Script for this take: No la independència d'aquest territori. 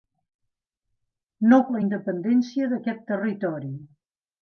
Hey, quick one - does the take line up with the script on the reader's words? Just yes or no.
yes